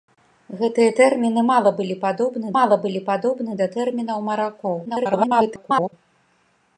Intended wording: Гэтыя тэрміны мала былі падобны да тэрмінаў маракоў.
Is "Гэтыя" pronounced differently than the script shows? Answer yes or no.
no